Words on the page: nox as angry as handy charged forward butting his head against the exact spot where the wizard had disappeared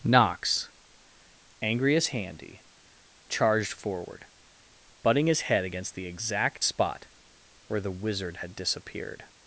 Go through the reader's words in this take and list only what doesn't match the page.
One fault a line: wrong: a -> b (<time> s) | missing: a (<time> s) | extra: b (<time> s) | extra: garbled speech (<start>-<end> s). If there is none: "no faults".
missing: as (0.7 s)